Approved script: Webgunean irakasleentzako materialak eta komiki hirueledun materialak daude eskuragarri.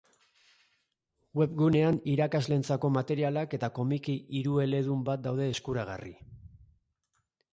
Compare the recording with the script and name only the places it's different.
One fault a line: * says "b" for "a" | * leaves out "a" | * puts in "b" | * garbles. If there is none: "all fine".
* says "bat" for "materialak"